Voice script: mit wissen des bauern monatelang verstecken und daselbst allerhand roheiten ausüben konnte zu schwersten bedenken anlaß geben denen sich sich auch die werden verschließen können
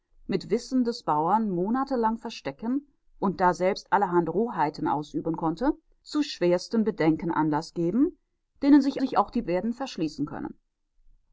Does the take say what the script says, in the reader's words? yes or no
yes